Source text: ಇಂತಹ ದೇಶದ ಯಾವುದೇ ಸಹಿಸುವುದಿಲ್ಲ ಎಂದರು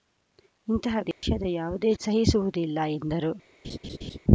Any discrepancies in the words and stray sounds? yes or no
yes